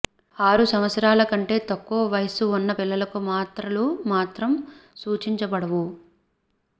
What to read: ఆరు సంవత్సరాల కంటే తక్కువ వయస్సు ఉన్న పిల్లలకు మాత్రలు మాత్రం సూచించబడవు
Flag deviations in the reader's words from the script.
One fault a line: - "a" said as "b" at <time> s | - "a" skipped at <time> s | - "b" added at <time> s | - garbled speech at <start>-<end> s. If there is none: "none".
none